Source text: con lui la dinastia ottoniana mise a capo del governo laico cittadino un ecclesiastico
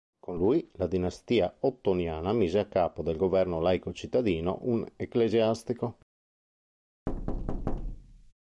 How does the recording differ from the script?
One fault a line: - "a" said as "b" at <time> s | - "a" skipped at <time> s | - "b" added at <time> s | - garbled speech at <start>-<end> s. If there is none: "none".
none